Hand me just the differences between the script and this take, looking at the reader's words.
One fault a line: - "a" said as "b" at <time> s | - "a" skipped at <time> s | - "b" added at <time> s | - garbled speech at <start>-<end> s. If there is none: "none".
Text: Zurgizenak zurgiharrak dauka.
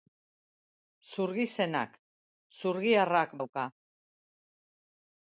none